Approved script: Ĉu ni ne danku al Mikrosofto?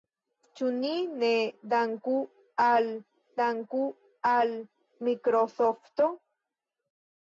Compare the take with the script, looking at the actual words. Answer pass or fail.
fail